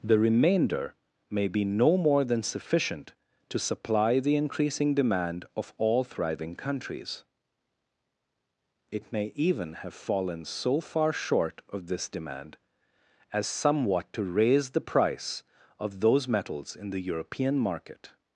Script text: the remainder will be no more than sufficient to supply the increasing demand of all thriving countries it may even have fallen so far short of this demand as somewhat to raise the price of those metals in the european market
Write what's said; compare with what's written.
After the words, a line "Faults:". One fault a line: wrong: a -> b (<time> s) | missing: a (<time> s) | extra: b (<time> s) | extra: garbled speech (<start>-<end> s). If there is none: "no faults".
the remainder may be no more than sufficient to supply the increasing demand of all thriving countries it may even have fallen so far short of this demand as somewhat to raise the price of those metals in the european market
Faults:
wrong: will -> may (1.3 s)